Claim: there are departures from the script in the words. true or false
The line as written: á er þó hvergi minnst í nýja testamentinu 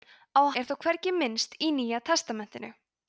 false